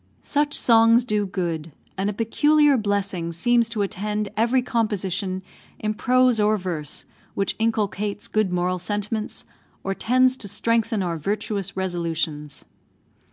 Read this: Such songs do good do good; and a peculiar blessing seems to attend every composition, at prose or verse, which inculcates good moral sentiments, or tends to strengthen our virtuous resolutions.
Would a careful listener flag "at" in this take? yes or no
yes